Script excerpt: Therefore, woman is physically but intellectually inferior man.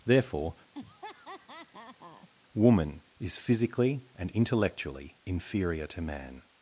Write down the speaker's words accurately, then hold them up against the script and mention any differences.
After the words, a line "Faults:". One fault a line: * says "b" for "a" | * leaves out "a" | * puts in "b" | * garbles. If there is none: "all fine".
Therefore, woman is physically and intellectually inferior to man.
Faults:
* says "and" for "but"
* puts in "to"